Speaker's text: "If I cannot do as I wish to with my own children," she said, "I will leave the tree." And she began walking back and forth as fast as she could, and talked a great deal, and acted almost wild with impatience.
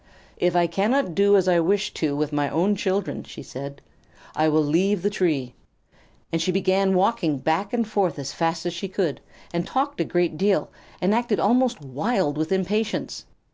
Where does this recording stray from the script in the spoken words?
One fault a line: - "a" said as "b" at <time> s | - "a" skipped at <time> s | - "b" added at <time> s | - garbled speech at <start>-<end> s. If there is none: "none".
none